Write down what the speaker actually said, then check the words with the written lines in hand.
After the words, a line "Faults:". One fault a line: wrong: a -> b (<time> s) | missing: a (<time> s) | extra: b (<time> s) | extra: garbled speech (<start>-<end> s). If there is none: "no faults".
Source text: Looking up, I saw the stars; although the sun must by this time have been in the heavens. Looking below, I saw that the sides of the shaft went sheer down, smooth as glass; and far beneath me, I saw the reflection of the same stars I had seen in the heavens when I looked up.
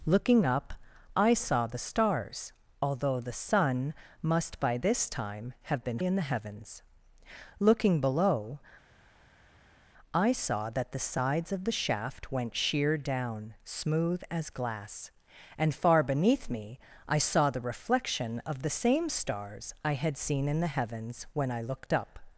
Looking up, I saw the stars; although the sun must by this time have been in the heavens. Looking below, I saw that the sides of the shaft went sheer down, smooth as glass; and far beneath me, I saw the reflection of the same stars I had seen in the heavens when I looked up.
Faults:
no faults